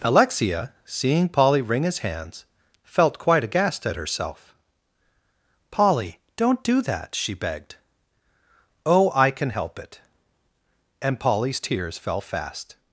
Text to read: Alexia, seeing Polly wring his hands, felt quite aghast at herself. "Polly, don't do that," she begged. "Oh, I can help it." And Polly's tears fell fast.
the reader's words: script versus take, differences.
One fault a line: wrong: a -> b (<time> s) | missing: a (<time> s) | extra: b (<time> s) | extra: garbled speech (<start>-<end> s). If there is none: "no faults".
no faults